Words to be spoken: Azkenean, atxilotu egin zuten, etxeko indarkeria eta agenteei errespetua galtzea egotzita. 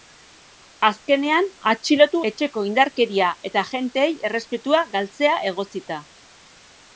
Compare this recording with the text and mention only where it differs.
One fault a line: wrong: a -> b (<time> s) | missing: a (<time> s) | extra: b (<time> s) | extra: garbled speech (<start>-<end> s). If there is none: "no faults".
missing: egin zuten (2.2 s)